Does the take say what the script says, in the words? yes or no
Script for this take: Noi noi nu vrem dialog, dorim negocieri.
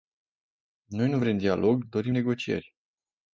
no